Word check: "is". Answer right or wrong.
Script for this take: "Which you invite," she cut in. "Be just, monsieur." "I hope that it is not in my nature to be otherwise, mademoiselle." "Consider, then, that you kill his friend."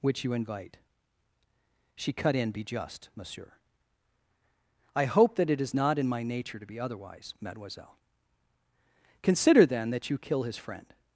right